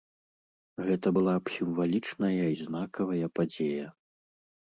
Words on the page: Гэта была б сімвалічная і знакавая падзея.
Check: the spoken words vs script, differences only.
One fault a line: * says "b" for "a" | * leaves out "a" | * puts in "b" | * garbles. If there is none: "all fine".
all fine